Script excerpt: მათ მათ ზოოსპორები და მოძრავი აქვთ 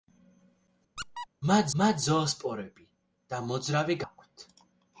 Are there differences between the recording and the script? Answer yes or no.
no